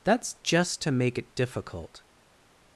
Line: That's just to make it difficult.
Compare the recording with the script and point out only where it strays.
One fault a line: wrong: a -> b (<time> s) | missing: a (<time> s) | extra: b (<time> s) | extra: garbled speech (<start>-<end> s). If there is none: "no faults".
no faults